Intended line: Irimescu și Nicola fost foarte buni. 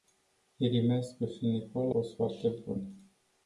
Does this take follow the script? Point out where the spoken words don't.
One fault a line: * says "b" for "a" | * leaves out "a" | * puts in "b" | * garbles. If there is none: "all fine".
all fine